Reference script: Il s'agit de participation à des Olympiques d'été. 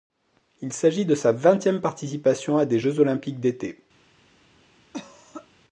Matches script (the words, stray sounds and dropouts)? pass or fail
fail